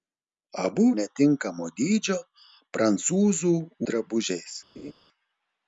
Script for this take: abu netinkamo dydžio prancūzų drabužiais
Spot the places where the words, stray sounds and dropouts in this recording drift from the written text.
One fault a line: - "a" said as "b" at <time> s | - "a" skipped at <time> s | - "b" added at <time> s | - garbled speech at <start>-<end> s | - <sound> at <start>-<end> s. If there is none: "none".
- laugh at 4.8-4.9 s